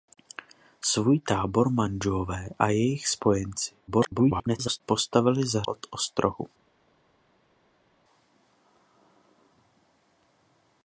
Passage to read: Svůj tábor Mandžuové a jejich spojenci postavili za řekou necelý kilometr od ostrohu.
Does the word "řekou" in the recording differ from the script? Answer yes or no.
yes